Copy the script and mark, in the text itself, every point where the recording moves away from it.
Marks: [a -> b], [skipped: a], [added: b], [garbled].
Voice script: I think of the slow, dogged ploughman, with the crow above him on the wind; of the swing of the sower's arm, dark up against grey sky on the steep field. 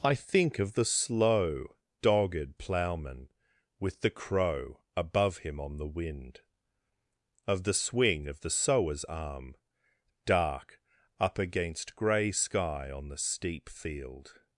I think of the slow, dogged ploughman, with the crow above him on the wind; of the swing of the sower's arm, dark up against grey sky on the steep field.